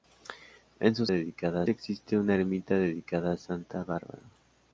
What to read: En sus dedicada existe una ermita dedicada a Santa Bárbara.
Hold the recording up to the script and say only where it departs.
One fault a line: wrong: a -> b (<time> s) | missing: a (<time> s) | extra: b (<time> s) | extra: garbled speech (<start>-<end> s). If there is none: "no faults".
no faults